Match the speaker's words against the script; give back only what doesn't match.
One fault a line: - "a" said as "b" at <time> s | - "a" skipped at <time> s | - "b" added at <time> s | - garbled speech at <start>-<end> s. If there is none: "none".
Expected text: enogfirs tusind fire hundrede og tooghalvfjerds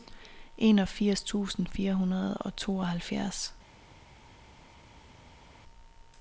none